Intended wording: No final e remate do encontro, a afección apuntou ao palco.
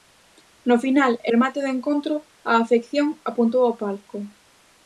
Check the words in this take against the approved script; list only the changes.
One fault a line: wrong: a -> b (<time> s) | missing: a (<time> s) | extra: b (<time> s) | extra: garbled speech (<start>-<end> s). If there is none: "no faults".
no faults